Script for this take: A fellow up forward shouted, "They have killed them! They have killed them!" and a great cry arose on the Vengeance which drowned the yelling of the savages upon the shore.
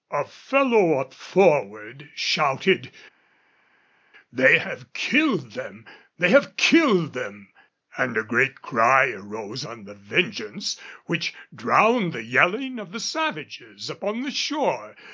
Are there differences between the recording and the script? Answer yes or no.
no